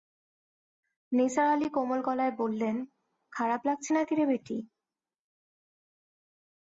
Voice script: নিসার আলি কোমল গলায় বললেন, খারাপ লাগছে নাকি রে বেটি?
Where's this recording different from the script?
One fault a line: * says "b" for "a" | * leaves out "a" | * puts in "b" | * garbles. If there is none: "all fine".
all fine